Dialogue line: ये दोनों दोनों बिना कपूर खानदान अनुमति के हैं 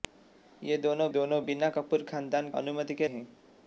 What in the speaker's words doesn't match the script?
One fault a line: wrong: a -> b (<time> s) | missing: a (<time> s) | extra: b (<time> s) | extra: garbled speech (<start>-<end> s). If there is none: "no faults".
no faults